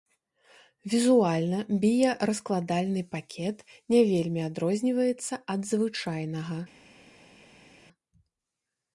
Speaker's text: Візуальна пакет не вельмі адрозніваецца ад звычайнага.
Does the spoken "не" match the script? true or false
true